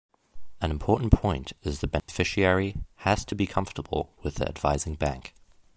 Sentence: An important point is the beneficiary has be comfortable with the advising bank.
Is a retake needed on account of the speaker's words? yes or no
yes